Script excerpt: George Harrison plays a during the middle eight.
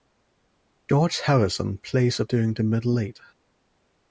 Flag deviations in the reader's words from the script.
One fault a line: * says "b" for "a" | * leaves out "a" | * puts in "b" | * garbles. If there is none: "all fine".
all fine